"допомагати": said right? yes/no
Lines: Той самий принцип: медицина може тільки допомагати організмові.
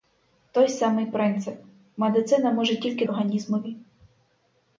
no